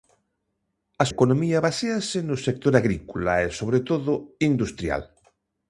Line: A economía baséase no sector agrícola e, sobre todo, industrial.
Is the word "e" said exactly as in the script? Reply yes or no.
yes